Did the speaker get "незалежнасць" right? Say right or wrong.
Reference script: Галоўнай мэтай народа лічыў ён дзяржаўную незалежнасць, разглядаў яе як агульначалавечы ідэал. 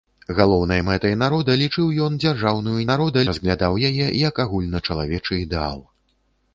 wrong